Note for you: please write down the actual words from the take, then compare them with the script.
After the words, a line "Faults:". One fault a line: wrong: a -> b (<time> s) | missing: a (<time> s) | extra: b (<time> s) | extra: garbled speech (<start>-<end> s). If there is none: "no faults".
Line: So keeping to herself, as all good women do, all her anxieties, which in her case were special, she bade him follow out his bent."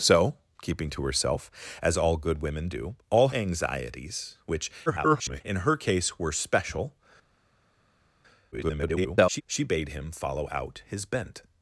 So keeping to herself, as all good women do, all anxieties, which [garbled] in her case were special, [garbled] she bade him follow out his bent."
Faults:
missing: her (3.3 s)
extra: garbled speech (4.9-5.4 s)
extra: garbled speech (8.5-9.4 s)